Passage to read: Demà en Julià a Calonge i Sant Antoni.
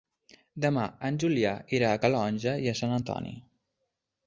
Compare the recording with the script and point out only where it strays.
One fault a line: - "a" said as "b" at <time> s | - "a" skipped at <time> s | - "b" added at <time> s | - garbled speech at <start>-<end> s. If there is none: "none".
- "irà" added at 1.8 s